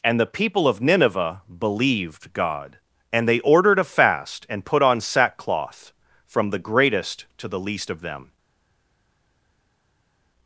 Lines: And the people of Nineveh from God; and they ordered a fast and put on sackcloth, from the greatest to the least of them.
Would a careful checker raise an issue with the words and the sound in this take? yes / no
yes